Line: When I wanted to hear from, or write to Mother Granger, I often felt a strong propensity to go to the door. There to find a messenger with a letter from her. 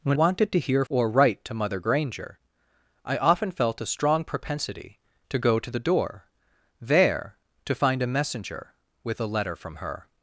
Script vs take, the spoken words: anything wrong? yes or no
yes